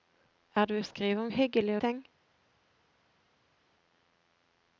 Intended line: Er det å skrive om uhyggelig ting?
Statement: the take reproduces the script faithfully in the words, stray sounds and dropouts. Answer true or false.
true